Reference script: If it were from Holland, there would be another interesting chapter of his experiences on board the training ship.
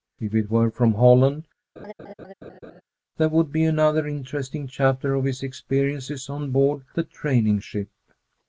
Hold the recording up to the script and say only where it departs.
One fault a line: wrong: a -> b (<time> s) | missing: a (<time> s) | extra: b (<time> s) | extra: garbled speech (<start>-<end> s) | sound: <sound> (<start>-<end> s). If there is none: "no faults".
sound: laugh (1.8-2.8 s)